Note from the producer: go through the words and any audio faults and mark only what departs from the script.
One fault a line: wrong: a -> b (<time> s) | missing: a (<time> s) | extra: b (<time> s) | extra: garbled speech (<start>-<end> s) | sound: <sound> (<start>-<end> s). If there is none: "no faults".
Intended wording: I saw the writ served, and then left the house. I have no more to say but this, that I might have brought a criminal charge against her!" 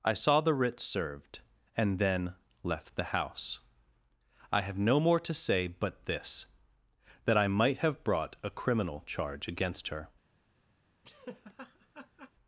sound: laugh (11.0-12.3 s)